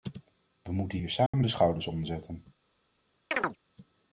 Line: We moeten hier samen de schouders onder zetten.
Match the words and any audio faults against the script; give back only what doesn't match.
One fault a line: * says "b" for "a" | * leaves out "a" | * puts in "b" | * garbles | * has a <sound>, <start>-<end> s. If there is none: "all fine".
* has a dropout, 1.3-1.3 s
* has a chirp, 3.3-3.6 s